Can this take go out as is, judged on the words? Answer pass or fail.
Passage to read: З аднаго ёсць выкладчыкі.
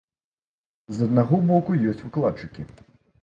fail